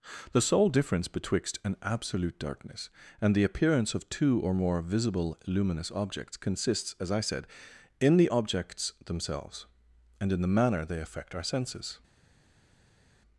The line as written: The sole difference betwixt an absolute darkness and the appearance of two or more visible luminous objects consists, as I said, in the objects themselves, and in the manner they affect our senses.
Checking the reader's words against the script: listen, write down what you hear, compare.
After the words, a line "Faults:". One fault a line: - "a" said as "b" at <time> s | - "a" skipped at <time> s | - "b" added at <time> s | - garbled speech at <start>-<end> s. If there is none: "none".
The sole difference betwixt an absolute darkness and the appearance of two or more visible luminous objects consists, as I said, in the objects themselves, and in the manner they affect our senses.
Faults:
none